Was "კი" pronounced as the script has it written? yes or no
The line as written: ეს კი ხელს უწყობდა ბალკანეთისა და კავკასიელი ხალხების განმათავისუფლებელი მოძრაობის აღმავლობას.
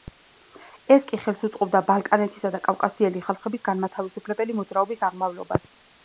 yes